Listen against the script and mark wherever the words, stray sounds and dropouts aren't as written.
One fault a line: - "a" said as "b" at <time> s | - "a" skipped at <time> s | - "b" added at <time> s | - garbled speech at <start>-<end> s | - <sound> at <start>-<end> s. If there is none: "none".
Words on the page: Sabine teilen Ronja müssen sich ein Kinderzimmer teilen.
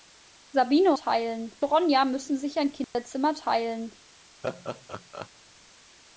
- dropout at 2.8-2.9 s
- laugh at 4.4-5.3 s